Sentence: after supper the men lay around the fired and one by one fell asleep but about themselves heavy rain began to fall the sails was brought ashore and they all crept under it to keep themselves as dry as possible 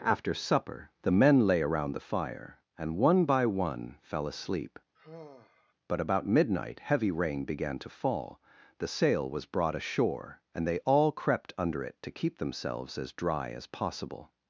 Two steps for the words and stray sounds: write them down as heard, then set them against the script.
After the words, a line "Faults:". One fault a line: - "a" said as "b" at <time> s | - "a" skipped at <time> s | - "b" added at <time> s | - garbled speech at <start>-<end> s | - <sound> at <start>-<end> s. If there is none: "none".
after supper the men lay around the fire and one by one fell asleep but about midnight heavy rain began to fall the sail was brought ashore and they all crept under it to keep themselves as dry as possible
Faults:
- "fired" said as "fire" at 2.1 s
- sigh at 4.9-5.7 s
- "themselves" said as "midnight" at 6.3 s
- "sails" said as "sail" at 8.9 s